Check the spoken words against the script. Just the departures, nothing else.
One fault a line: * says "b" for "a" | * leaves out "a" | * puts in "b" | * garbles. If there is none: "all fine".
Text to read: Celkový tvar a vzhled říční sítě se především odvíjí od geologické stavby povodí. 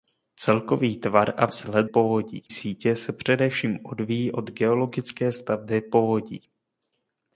* says "povodí" for "říční"